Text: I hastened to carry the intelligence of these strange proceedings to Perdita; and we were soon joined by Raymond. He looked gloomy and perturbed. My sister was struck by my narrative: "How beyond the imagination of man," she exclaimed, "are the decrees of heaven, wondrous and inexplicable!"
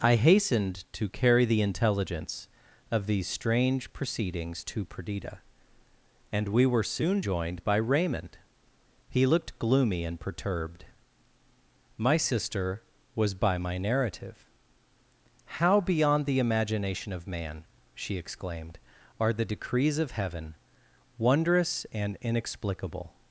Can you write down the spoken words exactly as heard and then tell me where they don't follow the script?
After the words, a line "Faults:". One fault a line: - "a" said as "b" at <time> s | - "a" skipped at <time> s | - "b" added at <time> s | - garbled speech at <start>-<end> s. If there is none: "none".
I hastened to carry the intelligence of these strange proceedings to Perdita; and we were soon joined by Raymond. He looked gloomy and perturbed. My sister was by my narrative: "How beyond the imagination of man," she exclaimed, "are the decrees of heaven, wondrous and inexplicable!"
Faults:
- "struck" skipped at 13.3 s